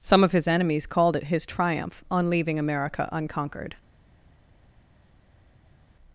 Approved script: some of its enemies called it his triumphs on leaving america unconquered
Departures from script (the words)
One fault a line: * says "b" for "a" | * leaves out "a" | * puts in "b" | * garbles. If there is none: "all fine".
* says "his" for "its"
* says "triumph" for "triumphs"